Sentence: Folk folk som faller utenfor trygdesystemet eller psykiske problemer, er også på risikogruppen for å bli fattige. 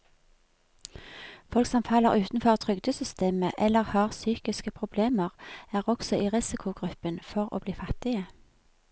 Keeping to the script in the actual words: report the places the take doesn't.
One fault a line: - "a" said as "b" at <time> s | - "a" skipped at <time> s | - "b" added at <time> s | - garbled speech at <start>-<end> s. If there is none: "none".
- "folk" skipped at 1.7 s
- "har" added at 3.8 s
- "på" said as "i" at 6.2 s